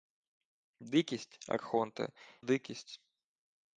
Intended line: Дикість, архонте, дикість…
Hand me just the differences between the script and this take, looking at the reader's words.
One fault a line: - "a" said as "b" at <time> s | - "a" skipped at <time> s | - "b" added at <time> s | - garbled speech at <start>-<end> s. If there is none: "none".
none